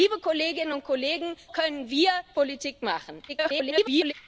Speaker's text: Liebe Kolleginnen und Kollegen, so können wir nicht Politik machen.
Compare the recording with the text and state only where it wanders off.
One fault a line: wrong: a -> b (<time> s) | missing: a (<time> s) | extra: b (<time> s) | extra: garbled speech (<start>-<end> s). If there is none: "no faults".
missing: so (1.4 s)
missing: nicht (2.1 s)
extra: garbled speech (3.3-4.1 s)